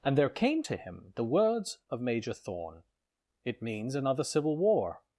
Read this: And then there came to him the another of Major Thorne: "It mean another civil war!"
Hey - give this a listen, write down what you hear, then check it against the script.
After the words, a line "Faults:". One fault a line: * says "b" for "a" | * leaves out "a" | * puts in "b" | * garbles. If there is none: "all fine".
And there came to him the words of Major Thorne: "It means another civil war!"
Faults:
* leaves out "then"
* says "words" for "another"
* says "means" for "mean"